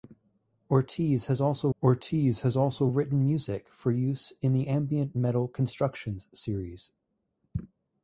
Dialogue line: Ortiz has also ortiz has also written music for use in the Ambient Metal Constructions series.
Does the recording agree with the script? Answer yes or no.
yes